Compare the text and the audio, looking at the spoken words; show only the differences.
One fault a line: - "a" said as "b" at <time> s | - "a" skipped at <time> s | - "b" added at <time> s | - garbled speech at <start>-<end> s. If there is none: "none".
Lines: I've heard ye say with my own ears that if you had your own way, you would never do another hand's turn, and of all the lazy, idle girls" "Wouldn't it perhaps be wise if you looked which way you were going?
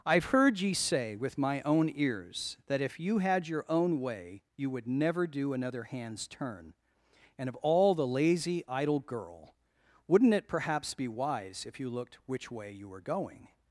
- "girls" said as "girl" at 9.0 s